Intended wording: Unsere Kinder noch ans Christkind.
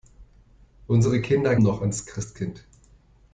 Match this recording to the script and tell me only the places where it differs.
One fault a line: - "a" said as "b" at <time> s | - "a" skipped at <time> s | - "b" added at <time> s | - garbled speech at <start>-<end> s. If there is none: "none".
none